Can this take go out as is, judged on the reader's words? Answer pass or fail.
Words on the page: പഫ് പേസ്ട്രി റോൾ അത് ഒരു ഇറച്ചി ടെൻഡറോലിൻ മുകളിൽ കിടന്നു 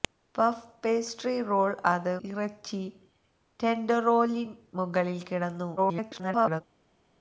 fail